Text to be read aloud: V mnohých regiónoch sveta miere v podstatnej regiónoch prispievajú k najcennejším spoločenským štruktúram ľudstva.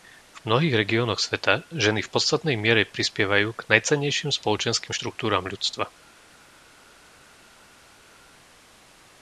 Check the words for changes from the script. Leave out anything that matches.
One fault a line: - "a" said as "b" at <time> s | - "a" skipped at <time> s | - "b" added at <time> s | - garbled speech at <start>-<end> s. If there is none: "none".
- "miere" said as "ženy" at 1.8 s
- "regiónoch" said as "miere" at 2.6 s